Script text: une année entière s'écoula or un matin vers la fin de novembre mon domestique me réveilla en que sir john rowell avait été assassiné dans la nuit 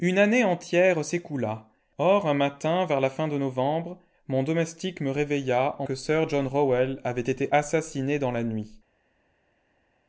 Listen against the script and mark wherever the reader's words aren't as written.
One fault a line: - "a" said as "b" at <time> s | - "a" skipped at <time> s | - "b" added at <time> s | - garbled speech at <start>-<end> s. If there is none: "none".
none